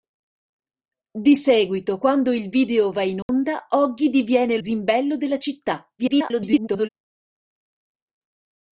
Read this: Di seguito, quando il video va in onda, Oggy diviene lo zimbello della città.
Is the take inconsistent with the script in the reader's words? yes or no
yes